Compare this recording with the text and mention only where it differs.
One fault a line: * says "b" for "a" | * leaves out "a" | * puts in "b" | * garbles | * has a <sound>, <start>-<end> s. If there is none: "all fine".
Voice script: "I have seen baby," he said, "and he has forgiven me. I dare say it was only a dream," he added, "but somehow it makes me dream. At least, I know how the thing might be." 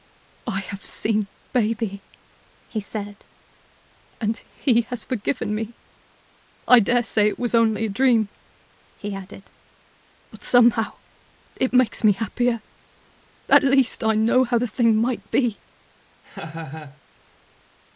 * says "happier" for "dream"
* has a laugh, 16.2-17.0 s